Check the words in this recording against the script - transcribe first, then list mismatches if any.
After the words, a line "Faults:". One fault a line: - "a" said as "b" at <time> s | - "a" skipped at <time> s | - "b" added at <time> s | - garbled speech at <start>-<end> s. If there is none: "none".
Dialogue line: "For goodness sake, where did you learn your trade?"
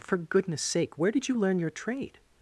"For goodness sake, where did you learn your trade?"
Faults:
none